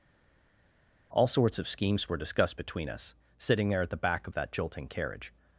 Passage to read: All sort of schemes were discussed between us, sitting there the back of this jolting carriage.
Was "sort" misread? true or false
true